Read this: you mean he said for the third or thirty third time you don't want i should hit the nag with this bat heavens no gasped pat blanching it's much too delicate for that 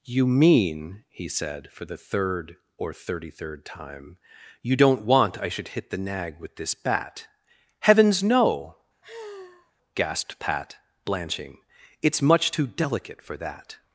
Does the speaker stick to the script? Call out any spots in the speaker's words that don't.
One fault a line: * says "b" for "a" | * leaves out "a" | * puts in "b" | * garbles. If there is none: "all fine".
all fine